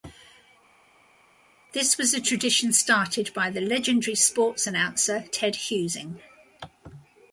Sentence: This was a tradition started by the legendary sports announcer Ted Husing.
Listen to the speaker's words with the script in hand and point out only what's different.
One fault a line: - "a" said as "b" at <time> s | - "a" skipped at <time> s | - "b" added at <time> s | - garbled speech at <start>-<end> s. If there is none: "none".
none